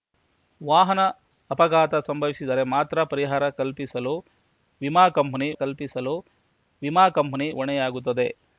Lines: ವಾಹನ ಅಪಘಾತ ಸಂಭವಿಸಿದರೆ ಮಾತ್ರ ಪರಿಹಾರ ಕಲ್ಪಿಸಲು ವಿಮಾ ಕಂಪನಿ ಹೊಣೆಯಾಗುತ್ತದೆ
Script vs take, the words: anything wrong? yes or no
yes